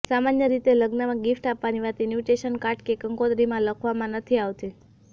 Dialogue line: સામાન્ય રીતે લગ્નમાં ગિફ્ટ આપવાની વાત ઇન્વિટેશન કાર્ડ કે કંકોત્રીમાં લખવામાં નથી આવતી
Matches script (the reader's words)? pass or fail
pass